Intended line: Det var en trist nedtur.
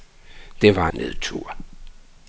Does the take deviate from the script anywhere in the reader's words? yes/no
yes